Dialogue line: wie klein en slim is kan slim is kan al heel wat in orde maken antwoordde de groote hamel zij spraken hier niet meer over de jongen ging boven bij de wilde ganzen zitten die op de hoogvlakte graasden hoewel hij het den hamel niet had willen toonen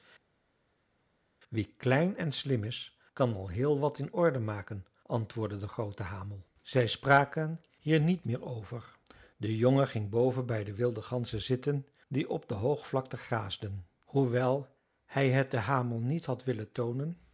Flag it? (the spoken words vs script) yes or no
yes